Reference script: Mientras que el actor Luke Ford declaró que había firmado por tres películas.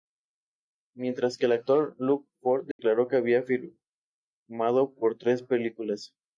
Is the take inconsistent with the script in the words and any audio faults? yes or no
yes